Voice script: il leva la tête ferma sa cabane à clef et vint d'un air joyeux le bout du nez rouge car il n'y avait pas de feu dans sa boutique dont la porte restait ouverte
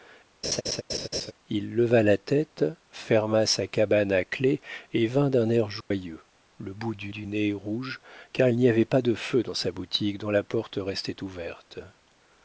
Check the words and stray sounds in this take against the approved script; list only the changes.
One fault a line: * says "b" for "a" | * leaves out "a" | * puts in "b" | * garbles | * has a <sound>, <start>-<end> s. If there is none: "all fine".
* has a laugh, 0.4-1.3 s
* has a dropout, 5.8-5.9 s
* puts in "du"